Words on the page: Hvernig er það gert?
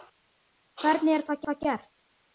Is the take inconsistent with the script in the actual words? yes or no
yes